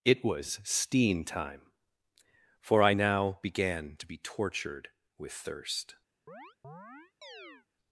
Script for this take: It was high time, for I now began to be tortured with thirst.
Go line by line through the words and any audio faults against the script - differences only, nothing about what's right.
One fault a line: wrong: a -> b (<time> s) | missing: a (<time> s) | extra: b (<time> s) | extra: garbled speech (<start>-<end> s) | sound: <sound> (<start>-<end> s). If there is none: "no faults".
wrong: high -> steen (0.6 s)
sound: chirp (6.3-7.7 s)